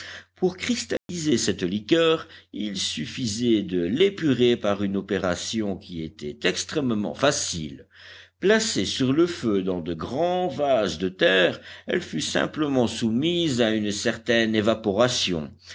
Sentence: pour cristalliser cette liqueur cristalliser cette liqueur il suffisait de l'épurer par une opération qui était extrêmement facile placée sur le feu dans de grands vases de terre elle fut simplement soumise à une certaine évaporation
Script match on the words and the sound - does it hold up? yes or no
no